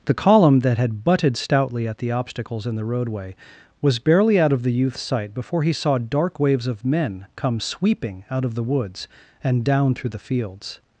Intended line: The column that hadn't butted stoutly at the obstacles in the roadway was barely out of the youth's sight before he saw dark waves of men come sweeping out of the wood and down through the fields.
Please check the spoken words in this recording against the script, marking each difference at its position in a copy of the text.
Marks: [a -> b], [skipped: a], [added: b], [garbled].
The column that [hadn't -> had] butted stoutly at the obstacles in the roadway was barely out of the youth's sight before he saw dark waves of men come sweeping out of the [wood -> woods] and down through the fields.